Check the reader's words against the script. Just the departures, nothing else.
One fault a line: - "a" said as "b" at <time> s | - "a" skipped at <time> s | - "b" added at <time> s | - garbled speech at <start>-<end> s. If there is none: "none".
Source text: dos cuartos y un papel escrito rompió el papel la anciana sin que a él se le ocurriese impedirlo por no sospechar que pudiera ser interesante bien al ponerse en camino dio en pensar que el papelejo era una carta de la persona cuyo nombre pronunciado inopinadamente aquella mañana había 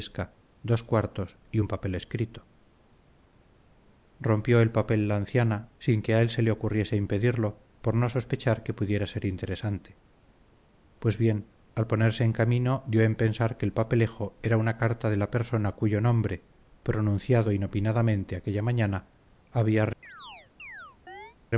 - "pues" added at 11.0 s